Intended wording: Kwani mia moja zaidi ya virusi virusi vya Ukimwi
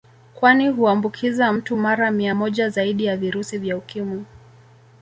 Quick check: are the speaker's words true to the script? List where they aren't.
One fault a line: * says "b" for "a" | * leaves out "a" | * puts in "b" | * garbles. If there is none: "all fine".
* puts in "huambukiza mtu mara"
* leaves out "virusi"